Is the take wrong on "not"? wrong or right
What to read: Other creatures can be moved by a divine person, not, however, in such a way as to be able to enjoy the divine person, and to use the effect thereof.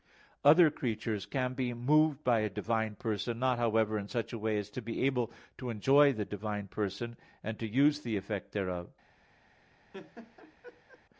right